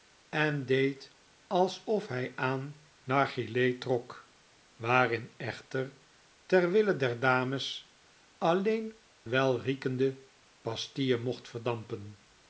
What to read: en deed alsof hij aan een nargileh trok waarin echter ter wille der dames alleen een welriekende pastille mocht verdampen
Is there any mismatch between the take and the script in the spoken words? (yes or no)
yes